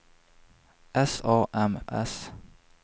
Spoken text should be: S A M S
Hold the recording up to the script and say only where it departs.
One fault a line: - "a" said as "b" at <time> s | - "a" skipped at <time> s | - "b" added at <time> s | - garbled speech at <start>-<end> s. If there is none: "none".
none